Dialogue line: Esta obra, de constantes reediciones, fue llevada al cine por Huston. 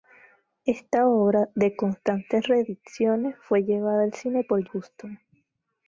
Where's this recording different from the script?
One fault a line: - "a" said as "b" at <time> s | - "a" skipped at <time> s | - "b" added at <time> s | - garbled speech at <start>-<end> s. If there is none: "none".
none